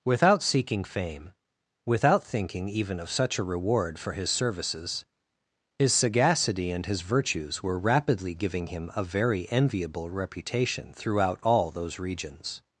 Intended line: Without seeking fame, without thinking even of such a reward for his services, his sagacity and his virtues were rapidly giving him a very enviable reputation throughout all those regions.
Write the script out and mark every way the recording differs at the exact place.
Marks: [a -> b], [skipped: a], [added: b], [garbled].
Without seeking fame, without thinking even of such a reward for his services, his sagacity and his virtues were rapidly giving him a very enviable reputation throughout all those regions.